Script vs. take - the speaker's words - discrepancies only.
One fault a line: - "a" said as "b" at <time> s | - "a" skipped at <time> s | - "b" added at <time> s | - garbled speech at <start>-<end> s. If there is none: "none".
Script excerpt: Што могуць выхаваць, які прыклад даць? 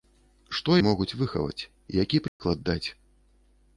none